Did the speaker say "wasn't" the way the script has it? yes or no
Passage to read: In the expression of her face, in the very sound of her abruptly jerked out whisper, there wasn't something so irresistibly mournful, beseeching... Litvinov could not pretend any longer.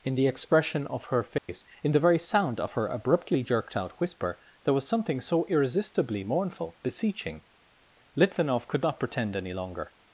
no